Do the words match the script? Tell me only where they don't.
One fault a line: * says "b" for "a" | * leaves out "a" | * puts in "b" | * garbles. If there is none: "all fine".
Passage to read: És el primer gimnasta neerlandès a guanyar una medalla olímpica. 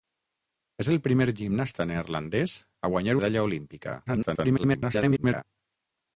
* leaves out "una"
* garbles